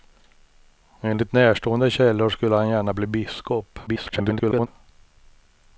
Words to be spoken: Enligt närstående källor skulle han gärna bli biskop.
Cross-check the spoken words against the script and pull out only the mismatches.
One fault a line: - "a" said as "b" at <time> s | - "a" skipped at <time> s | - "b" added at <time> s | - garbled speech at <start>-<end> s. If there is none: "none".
- garbled speech at 3.9-4.7 s